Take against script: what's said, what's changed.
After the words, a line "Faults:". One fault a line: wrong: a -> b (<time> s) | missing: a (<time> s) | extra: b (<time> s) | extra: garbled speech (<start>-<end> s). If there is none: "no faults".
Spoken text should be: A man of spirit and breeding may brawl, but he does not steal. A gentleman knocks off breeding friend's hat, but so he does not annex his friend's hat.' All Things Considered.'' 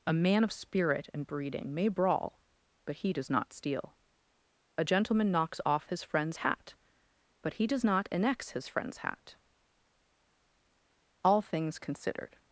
A man of spirit and breeding may brawl, but he does not steal. A gentleman knocks off his friend's hat, but he does not annex his friend's hat.' All Things Considered.''
Faults:
wrong: breeding -> his (5.9 s)
missing: so (7.5 s)